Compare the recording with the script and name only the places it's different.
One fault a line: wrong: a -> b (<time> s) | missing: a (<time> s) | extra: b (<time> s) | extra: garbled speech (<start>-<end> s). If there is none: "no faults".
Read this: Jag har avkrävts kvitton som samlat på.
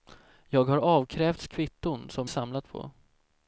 no faults